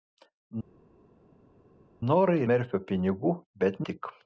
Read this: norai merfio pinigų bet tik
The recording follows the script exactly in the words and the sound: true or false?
true